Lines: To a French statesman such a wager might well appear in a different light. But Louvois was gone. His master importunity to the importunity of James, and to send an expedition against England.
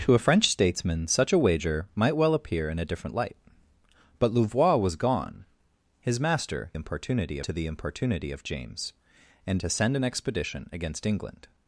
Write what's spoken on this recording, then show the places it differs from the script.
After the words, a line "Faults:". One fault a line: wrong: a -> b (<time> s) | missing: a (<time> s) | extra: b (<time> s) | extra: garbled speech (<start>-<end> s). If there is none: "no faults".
To a French statesman such a wager might well appear in a different light. But Louvois was gone. His master importunity to the importunity of James, and to send an expedition against England.
Faults:
no faults